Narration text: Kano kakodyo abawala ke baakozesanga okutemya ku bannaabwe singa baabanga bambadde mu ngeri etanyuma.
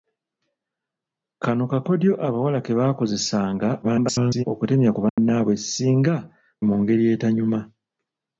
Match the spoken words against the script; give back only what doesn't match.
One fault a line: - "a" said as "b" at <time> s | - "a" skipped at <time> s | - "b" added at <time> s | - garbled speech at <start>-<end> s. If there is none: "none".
- garbled speech at 3.8-4.4 s
- "baabanga bambadde" skipped at 6.2 s